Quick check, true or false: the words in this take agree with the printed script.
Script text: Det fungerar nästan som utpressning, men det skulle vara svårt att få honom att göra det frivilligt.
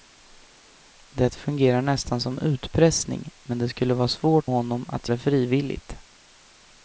false